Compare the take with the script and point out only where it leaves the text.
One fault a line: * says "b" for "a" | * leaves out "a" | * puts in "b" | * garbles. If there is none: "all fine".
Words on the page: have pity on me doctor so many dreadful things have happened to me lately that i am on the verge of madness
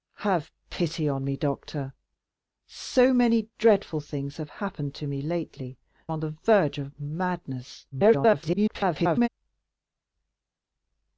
* leaves out "that i am"
* garbles